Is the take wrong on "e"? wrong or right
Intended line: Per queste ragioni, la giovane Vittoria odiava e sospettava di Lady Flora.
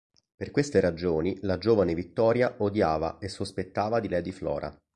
right